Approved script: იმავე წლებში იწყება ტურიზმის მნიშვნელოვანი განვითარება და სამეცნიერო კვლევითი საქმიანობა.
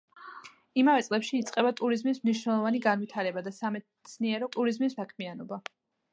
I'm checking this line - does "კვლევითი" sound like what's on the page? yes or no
no